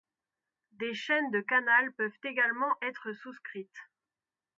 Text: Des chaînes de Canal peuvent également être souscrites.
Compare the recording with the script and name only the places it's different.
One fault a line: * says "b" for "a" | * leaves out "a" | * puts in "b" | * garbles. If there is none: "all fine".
all fine